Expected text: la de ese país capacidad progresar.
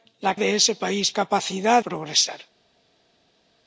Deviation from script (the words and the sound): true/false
false